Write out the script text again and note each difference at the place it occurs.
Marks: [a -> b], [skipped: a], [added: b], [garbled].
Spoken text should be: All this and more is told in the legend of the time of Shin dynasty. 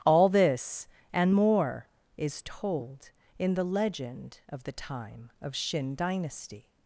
All this and more is told in the legend of the time of Shin dynasty.